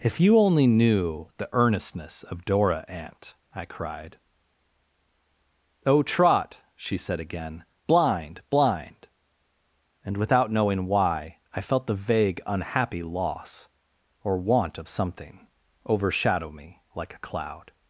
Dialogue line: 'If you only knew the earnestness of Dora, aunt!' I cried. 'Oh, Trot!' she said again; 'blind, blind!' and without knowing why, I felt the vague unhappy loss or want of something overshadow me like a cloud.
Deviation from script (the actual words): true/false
false